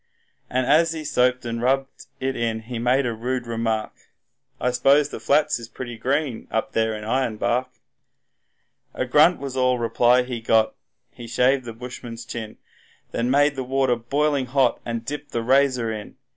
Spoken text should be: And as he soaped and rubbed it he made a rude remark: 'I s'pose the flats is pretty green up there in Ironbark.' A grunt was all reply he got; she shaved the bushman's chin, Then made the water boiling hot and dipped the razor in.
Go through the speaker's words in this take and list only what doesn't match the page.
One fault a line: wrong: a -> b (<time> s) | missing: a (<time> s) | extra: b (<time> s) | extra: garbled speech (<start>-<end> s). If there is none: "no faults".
extra: in (2.4 s)
wrong: she -> he (11.1 s)